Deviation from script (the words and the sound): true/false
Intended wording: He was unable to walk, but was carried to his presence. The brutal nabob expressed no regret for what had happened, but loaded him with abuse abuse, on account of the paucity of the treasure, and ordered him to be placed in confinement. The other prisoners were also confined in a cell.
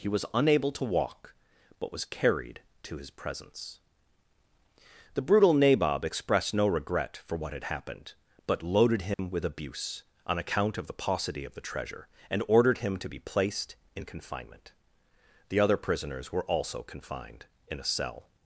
true